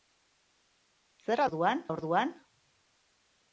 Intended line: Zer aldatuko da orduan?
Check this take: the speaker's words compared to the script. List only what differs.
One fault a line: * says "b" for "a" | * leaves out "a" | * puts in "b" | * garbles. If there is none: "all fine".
* says "orduan" for "aldatuko"